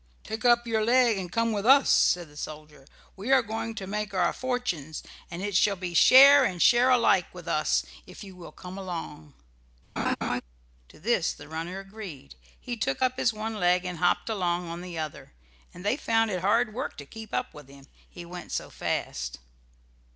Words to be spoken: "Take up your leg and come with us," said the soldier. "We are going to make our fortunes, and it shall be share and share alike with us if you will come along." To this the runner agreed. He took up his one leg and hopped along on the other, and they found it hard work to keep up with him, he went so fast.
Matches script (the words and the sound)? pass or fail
fail